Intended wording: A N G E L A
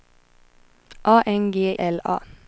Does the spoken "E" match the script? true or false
false